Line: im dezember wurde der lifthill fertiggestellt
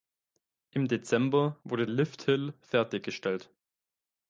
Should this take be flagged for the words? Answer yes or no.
yes